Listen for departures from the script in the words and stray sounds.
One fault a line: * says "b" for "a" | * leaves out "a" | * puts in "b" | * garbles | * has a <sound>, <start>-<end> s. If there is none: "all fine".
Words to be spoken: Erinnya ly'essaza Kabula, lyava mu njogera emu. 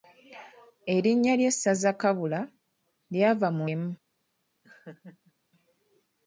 * leaves out "njogera"
* has a laugh, 4.6-5.3 s